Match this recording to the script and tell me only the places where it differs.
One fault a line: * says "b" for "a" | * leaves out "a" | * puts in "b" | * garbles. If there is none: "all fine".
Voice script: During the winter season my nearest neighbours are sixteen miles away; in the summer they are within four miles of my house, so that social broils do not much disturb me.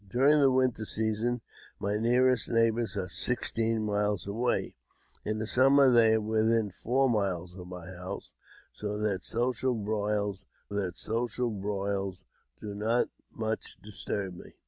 * puts in "that social broils"